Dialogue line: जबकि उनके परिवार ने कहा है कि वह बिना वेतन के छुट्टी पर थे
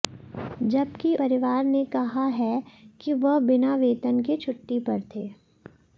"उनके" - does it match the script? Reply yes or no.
no